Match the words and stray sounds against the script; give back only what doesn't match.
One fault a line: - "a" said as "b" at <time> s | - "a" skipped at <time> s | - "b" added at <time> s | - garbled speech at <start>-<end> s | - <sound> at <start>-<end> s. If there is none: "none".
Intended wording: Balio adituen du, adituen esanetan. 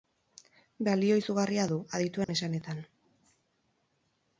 - "adituen" said as "izugarria" at 1.2 s
- dropout at 2.2-2.3 s